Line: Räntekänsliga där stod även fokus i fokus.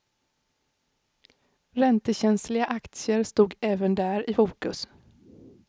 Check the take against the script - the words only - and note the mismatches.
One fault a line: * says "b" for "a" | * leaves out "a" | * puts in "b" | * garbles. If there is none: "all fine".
* says "aktier" for "där"
* says "där" for "fokus"